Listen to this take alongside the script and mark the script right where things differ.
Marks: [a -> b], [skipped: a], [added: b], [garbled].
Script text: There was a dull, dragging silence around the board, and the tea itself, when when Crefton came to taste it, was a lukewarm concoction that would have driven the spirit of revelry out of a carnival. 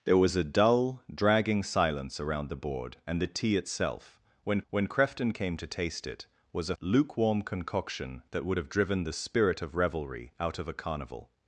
There was a dull, dragging silence around the board, and the tea itself, when when Crefton came to taste it, was a lukewarm concoction that would have driven the spirit of revelry out of a carnival.